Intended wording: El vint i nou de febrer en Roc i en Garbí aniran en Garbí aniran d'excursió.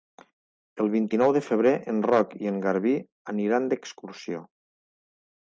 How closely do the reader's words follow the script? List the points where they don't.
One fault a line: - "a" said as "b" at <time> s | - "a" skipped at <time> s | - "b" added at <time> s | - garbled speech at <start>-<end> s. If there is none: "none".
- "en Garbí aniran" skipped at 3.7 s